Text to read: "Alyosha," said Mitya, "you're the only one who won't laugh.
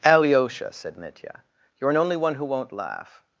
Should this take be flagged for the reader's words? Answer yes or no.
yes